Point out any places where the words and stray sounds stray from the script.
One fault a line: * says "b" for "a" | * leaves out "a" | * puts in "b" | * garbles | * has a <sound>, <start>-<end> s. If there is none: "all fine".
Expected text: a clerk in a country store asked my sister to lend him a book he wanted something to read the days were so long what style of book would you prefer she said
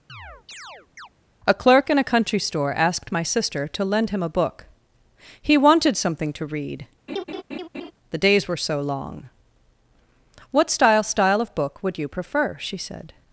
* has a chirp, 0.1-1.1 s
* has a laugh, 7.1-7.9 s
* puts in "style"